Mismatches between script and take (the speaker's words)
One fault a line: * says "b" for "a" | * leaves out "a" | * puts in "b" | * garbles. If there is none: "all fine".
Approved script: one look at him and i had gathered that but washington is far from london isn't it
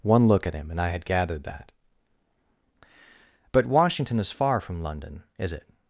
* says "is" for "isn't"